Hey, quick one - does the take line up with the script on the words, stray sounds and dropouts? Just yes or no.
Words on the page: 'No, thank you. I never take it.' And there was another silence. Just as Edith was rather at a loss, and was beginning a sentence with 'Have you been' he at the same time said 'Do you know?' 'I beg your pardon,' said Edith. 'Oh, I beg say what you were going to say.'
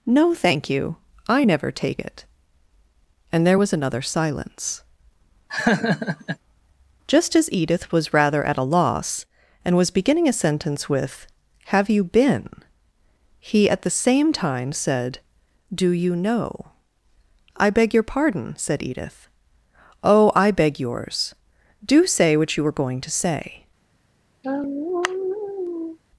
no